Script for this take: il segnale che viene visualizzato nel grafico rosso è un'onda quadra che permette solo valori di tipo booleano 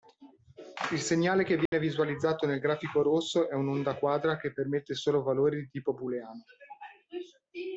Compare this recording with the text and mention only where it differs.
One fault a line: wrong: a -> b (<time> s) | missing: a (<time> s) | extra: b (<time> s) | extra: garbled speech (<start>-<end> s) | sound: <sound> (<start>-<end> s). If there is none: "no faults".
sound: dropout (1.7-1.7 s)